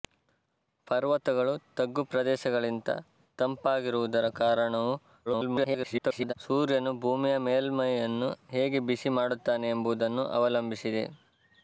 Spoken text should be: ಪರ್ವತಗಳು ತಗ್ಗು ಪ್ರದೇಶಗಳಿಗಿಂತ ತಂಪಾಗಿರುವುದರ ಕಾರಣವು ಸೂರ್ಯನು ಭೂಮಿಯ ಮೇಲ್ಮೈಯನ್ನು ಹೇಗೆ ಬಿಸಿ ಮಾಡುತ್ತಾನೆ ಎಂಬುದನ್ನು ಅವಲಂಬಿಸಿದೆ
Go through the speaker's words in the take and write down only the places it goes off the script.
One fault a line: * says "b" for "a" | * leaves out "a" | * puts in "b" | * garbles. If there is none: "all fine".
* garbles